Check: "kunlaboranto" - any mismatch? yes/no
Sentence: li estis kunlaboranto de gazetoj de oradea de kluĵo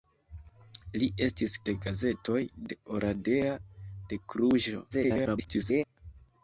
yes